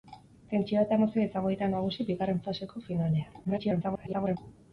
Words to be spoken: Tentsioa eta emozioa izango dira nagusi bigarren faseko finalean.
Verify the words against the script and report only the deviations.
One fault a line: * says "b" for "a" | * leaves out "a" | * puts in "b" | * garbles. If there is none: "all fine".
* garbles